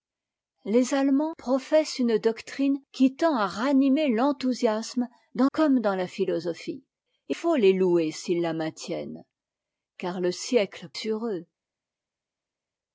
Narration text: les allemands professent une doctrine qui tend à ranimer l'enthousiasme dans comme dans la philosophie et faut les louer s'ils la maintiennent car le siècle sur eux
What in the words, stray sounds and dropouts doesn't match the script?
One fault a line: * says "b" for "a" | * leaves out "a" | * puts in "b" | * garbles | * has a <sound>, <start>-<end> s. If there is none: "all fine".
all fine